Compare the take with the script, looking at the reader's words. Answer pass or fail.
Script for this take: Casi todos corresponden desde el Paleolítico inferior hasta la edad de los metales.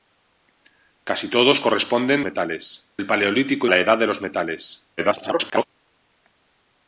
fail